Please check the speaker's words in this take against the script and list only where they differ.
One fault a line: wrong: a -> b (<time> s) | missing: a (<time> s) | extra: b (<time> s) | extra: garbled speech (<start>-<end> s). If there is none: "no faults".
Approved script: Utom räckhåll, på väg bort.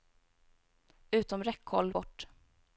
missing: på väg (1.9 s)